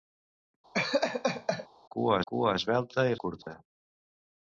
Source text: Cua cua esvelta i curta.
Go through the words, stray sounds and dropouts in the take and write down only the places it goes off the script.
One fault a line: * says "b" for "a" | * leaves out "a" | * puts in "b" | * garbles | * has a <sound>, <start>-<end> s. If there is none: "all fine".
* has a laugh, 0.7-1.7 s
* has a dropout, 3.4-3.5 s